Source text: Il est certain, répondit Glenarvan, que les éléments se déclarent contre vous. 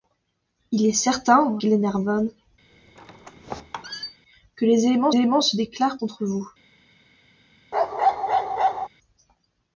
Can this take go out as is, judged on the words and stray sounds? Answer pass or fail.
fail